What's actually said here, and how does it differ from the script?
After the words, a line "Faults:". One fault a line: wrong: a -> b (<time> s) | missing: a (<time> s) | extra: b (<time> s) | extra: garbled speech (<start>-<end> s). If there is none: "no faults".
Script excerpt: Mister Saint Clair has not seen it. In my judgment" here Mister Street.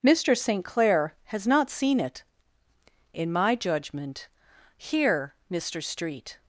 Mister Saint Clair has not seen it. In my judgment" here Mister Street.
Faults:
no faults